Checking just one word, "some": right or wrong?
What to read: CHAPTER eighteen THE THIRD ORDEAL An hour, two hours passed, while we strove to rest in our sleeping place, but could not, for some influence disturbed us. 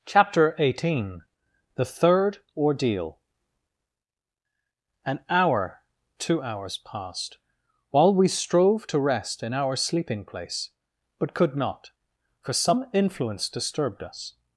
right